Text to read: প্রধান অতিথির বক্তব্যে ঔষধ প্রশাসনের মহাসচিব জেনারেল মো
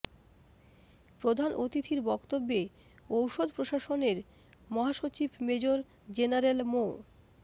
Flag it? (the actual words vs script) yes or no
yes